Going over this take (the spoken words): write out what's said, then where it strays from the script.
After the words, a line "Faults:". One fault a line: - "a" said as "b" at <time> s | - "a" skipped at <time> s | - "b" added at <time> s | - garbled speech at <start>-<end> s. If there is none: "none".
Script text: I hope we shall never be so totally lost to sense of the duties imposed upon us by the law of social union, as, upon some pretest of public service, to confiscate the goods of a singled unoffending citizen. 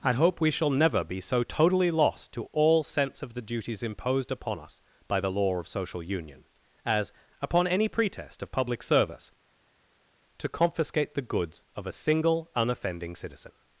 I hope we shall never be so totally lost to all sense of the duties imposed upon us by the law of social union, as, upon any pretest of public service, to confiscate the goods of a single unoffending citizen.
Faults:
- "all" added at 2.5 s
- "some" said as "any" at 7.7 s
- "singled" said as "single" at 11.9 s